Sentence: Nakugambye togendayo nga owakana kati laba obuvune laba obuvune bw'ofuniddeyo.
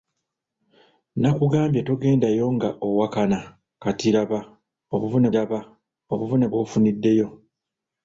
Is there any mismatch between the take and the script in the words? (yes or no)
no